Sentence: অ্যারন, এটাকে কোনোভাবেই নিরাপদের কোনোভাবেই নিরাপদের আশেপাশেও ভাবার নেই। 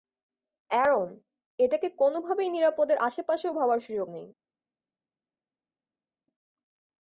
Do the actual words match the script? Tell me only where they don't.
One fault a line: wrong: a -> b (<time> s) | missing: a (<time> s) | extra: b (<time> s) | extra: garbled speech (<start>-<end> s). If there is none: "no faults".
missing: কোনোভাবেই নিরাপদের (3.0 s)
extra: সুযোগ (3.8 s)